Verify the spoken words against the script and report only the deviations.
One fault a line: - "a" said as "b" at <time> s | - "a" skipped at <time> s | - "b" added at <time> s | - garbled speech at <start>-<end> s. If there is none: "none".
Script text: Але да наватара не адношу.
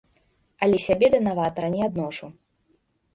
- "сябе" added at 0.8 s